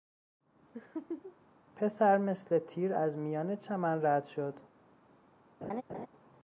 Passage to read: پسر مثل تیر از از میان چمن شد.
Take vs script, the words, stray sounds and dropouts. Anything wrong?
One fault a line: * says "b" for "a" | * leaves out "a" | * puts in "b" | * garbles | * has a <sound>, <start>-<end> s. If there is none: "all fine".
* has a laugh, 0.7-1.4 s
* leaves out "از"
* puts in "رد"
* has a laugh, 5.6-6.1 s